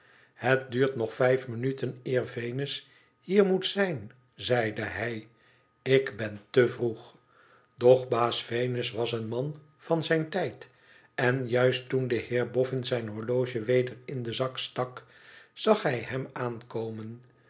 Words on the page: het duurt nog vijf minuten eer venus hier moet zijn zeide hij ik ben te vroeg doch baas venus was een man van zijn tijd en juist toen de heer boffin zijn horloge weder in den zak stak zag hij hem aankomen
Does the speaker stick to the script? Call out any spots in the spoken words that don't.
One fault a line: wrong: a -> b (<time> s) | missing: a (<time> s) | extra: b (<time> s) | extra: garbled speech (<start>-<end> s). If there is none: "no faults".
no faults